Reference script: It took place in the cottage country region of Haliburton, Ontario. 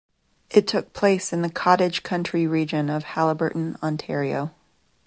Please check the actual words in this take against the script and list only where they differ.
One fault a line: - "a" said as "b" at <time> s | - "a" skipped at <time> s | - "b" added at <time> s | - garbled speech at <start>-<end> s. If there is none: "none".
none